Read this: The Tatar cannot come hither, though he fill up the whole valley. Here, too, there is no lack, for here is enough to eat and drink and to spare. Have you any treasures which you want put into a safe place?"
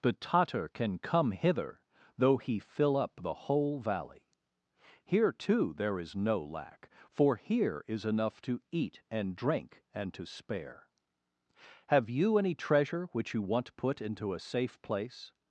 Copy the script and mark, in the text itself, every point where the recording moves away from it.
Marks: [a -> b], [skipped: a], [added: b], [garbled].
The Tatar [cannot -> can] come hither, though he fill up the whole valley. Here, too, there is no lack, for here is enough to eat and drink and to spare. Have you any [treasures -> treasure] which you want put into a safe place?"